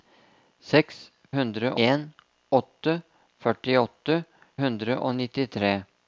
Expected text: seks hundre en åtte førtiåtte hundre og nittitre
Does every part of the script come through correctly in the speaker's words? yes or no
yes